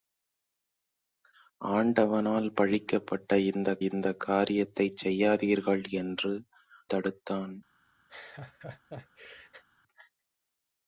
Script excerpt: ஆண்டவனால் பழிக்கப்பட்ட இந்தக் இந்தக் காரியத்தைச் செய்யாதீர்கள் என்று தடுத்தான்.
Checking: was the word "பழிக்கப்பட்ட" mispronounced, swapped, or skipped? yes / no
no